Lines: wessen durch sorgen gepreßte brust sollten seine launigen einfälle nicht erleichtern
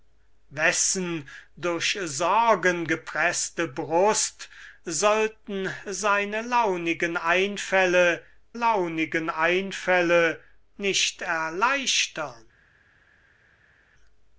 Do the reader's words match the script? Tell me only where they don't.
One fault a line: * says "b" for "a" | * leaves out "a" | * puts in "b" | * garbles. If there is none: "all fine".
* puts in "launigen einfälle"